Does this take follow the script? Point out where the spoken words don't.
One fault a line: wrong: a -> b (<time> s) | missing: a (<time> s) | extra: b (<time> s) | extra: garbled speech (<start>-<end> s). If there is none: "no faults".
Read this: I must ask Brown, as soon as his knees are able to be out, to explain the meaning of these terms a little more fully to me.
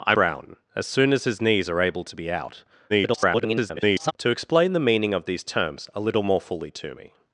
missing: must ask (0.1 s)
extra: garbled speech (2.9-4.1 s)